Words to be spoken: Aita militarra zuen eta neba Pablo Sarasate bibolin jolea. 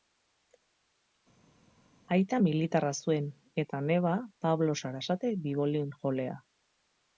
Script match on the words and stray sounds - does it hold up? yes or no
yes